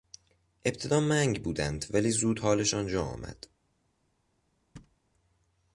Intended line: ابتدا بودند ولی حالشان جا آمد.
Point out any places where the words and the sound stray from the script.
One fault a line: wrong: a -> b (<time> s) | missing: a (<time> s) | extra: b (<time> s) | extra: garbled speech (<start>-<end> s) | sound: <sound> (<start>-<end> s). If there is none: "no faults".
extra: منگ (1.0 s)
extra: زود (2.1 s)
sound: thud (4.8-5.0 s)